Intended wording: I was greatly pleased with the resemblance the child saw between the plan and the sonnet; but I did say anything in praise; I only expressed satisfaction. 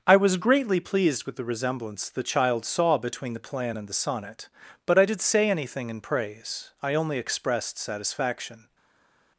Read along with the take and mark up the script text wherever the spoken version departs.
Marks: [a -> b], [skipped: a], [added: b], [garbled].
I was greatly pleased with the resemblance the child saw between the plan and the sonnet; but I did say anything in praise; I only expressed satisfaction.